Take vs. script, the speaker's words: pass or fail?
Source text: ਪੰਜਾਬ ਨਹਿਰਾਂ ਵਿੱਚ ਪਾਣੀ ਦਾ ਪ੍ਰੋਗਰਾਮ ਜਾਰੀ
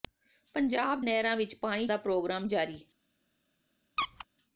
pass